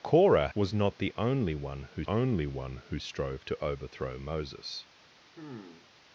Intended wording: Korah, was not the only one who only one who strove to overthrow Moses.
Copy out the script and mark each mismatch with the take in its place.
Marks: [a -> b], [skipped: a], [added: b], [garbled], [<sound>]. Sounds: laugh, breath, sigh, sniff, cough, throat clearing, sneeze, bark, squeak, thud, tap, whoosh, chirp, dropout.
Korah, was not the only one who only one who strove to overthrow Moses. [sigh]